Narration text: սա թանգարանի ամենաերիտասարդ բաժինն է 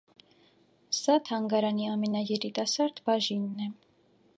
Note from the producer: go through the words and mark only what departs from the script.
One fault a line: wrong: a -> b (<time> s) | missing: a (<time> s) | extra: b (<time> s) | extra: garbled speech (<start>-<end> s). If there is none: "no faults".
no faults